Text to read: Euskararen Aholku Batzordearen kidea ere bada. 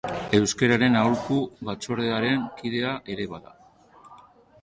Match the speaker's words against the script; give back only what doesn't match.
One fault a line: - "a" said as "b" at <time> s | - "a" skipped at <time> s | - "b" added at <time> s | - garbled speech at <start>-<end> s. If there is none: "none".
none